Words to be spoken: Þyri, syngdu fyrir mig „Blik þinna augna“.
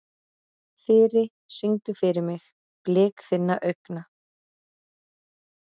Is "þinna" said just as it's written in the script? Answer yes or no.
yes